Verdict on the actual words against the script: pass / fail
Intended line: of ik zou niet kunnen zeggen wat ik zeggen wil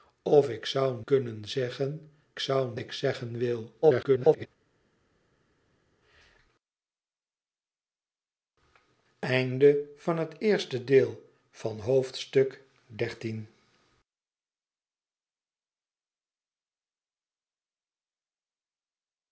fail